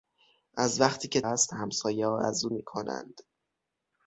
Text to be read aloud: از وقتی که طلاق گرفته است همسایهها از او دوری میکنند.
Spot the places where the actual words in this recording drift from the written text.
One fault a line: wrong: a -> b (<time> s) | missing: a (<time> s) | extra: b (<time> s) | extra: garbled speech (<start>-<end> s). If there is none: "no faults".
missing: طلاق گرفته (1.2 s)
missing: دوری (2.5 s)